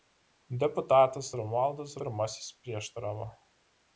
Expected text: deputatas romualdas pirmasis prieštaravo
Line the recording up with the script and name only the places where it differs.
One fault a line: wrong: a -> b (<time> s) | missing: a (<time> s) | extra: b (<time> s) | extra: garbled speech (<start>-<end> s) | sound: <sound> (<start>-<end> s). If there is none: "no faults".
no faults